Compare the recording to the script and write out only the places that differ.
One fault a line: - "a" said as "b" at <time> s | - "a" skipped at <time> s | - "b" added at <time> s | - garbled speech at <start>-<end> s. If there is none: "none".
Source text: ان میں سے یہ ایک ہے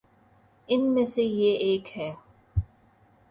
none